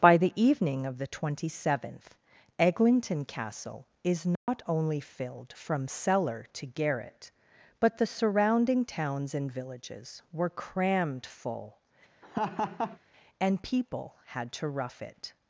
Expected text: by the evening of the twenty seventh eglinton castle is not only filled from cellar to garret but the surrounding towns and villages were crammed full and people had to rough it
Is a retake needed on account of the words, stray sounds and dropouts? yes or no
yes